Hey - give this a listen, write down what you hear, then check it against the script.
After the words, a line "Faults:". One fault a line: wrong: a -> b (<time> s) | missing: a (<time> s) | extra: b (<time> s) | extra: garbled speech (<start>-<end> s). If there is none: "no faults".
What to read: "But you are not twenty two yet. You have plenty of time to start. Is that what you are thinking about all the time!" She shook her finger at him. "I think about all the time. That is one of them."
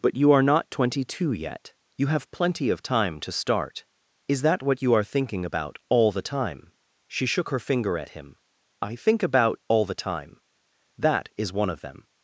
"But you are not twenty two yet. You have plenty of time to start. Is that what you are thinking about all the time!" She shook her finger at him. "I think about all the time. That is one of them."
Faults:
no faults